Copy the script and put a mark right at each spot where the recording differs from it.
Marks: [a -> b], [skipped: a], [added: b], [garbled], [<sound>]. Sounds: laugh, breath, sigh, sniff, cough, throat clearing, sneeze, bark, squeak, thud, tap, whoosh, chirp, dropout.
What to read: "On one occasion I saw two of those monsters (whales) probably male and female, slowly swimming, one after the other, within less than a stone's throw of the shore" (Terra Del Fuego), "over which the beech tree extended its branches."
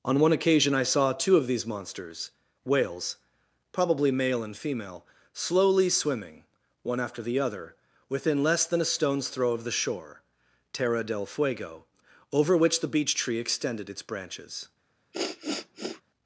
"On one occasion I saw two of [those -> these] monsters (whales) probably male and female, slowly swimming, one after the other, within less than a stone's throw of the shore" (Terra Del Fuego), "over which the beech tree extended its branches." [sniff]